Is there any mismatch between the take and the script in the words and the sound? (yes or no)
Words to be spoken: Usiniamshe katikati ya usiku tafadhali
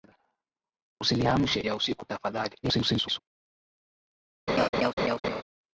yes